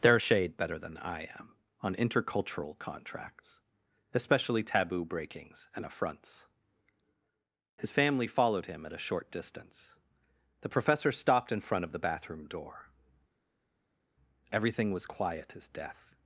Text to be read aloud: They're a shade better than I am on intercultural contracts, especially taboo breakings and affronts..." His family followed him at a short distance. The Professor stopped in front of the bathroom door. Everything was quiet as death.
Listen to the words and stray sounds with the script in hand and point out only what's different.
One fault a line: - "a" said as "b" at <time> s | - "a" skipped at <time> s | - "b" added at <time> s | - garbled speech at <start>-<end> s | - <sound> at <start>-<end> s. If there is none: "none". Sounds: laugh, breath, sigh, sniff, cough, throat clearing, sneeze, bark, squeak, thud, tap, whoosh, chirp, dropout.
none